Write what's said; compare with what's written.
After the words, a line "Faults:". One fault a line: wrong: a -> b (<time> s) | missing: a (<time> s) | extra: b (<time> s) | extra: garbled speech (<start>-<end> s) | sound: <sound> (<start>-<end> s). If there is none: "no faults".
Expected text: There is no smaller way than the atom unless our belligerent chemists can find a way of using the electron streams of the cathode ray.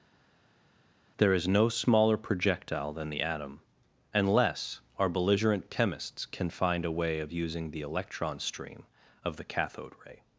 There is no smaller projectile than the atom unless our belligerent chemists can find a way of using the electron stream of the cathode ray.
Faults:
wrong: way -> projectile (2.2 s)
wrong: streams -> stream (8.4 s)